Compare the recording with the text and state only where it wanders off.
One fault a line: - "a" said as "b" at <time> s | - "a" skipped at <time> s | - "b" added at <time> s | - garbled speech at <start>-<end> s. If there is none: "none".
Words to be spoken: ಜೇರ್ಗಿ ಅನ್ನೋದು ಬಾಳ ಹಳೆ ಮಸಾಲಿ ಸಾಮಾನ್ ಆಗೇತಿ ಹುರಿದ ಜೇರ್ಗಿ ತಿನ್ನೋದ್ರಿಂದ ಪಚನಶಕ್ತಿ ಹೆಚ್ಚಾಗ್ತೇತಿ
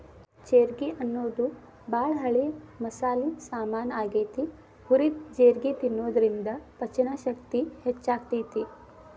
none